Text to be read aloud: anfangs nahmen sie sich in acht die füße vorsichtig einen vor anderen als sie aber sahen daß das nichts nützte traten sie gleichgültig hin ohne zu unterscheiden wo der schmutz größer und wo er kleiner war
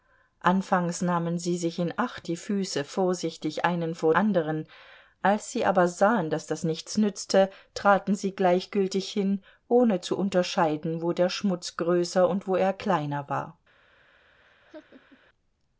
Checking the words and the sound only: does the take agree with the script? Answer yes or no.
no